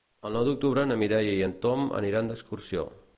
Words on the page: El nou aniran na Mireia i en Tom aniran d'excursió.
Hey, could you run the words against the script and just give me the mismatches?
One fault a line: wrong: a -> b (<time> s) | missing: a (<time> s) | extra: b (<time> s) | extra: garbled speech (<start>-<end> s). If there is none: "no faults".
wrong: aniran -> d'octubre (0.5 s)